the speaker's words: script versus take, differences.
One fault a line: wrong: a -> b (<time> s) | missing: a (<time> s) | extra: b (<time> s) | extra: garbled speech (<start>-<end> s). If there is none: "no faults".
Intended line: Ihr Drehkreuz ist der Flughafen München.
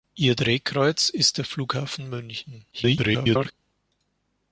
extra: garbled speech (2.7-3.5 s)